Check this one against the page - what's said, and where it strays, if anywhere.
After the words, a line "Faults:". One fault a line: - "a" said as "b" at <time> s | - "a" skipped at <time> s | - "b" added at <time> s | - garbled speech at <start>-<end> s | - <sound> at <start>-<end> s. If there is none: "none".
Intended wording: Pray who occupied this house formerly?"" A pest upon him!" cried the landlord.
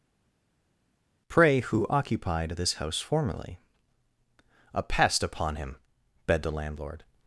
Pray who occupied this house formerly?"" A pest upon him!" begged the landlord.
Faults:
- "cried" said as "begged" at 6.3 s